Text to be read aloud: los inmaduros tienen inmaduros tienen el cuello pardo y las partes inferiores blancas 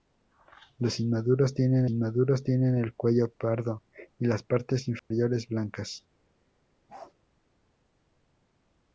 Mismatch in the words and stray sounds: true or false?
true